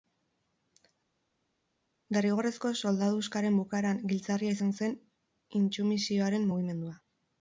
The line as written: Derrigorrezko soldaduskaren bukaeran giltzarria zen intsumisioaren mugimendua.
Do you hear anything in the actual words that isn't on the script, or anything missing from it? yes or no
yes